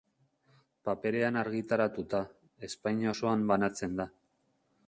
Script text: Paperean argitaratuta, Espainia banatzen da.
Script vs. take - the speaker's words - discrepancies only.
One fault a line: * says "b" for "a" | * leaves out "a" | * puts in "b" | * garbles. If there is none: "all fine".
* puts in "osoan"